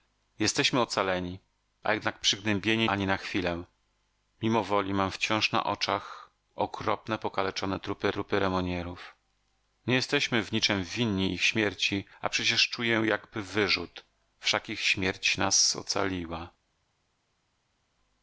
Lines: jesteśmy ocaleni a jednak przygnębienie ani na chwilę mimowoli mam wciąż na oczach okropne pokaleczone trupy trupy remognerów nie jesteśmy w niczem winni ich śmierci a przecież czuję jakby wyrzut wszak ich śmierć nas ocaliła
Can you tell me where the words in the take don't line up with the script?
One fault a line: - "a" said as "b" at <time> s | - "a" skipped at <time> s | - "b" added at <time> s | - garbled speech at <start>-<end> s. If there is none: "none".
none